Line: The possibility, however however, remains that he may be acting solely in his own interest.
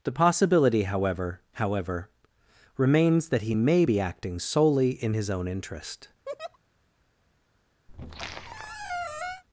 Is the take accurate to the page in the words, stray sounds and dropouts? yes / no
no